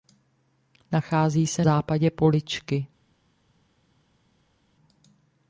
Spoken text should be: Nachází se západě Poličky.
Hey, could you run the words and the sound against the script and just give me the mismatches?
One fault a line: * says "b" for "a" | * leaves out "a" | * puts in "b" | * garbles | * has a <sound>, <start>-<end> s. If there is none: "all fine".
all fine